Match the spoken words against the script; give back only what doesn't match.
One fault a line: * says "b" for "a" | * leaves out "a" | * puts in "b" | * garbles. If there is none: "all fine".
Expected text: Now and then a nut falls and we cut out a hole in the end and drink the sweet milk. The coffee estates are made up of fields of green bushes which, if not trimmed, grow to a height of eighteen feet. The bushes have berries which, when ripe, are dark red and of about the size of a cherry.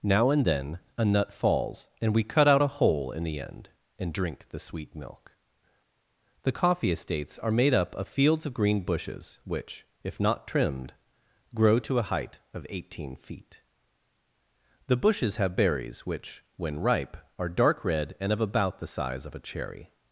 all fine